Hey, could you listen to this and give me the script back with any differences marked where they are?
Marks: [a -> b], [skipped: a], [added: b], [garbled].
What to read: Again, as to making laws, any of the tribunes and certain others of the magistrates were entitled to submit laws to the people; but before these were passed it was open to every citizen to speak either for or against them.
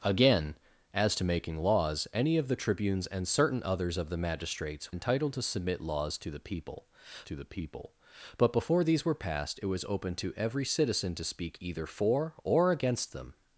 Again, as to making laws, any of the tribunes and certain others of the magistrates [skipped: were] entitled to submit laws to the people; [added: to the people] but before these were passed it was open to every citizen to speak either for or against them.